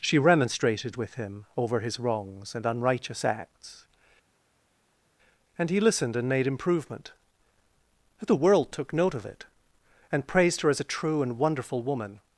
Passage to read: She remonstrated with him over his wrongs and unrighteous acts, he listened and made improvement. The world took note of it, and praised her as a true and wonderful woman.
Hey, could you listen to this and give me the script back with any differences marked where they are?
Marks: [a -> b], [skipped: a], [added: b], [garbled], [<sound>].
She remonstrated with him over his wrongs and unrighteous acts, [added: and] he listened and made improvement. The world took note of it, and praised her as a true and wonderful woman.